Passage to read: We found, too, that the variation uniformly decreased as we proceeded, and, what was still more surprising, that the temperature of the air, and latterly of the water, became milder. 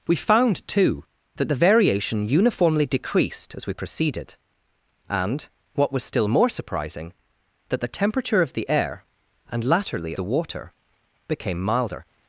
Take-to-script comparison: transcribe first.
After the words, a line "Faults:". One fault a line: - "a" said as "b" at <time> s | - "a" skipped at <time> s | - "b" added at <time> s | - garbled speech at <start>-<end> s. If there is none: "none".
We found, too, that the variation uniformly decreased as we proceeded, and, what was still more surprising, that the temperature of the air, and latterly the water, became milder.
Faults:
- "of" skipped at 10.1 s